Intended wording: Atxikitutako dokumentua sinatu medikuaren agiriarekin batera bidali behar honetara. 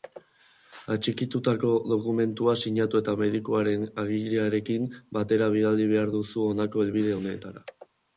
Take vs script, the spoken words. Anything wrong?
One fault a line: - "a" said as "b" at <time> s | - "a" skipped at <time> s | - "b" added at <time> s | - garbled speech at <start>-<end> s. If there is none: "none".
- "eta" added at 3.0 s
- "duzu honako helbide" added at 6.1 s